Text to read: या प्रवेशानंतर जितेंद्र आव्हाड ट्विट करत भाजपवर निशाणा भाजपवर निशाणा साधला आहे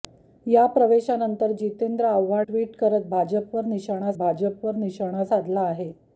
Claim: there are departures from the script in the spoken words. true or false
false